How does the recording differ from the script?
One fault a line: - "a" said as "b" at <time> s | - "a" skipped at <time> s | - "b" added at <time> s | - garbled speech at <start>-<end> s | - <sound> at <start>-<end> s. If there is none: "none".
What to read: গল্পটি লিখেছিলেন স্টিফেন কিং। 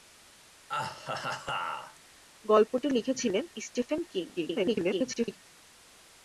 - laugh at 0.7-2.0 s
- garbled speech at 4.4-5.4 s